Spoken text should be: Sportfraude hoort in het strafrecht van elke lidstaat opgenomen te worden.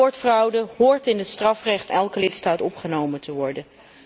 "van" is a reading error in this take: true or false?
true